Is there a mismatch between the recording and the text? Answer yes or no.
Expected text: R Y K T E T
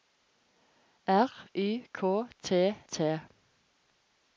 yes